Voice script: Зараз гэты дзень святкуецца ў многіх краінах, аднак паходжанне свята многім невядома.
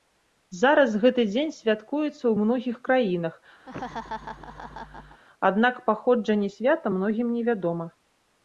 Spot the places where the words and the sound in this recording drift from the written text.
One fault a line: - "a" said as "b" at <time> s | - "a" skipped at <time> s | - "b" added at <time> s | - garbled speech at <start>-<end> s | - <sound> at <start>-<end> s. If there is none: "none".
- laugh at 3.7-5.2 s